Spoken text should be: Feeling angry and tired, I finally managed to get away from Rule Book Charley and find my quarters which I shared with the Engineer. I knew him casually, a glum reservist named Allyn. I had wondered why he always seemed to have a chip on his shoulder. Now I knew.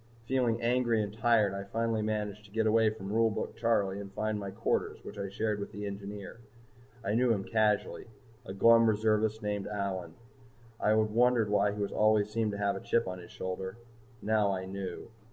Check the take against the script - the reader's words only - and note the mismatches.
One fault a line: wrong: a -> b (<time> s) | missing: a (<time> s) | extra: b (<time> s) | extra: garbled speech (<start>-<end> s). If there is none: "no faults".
no faults